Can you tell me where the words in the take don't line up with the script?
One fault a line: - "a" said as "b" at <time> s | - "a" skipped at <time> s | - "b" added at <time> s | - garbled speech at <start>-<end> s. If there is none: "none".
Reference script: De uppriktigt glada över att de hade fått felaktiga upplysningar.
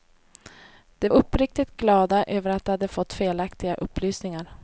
none